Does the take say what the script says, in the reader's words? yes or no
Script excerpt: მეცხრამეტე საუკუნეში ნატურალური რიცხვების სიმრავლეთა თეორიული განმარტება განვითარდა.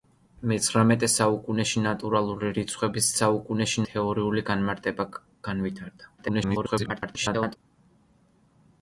no